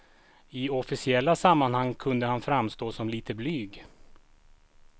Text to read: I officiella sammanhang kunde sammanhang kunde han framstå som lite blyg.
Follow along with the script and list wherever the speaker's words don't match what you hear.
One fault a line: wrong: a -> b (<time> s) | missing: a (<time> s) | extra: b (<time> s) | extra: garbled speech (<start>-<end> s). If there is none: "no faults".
missing: sammanhang kunde (2.2 s)